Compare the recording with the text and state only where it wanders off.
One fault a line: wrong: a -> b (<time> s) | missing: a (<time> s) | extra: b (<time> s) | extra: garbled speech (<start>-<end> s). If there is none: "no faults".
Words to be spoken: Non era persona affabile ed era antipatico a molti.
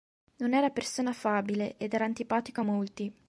no faults